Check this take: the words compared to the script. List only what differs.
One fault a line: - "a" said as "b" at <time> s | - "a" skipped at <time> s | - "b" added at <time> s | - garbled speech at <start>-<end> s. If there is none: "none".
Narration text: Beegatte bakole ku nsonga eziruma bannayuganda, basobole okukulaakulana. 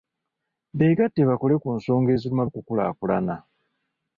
- "bannayuganda basobole" skipped at 2.5 s